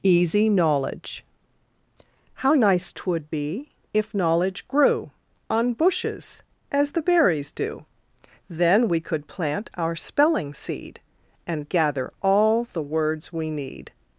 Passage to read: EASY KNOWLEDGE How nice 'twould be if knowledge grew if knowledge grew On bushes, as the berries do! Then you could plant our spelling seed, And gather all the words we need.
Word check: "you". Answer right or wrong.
wrong